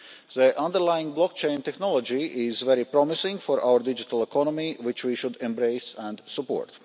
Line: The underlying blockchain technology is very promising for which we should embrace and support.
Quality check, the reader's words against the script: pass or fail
fail